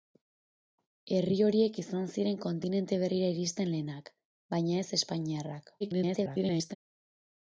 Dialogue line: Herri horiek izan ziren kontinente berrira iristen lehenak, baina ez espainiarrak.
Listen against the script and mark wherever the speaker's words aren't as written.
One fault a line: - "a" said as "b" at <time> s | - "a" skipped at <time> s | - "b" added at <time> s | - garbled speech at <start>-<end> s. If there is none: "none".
- garbled speech at 5.8-6.8 s